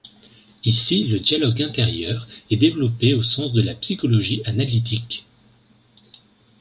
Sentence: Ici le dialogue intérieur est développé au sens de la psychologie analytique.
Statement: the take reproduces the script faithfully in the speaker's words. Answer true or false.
true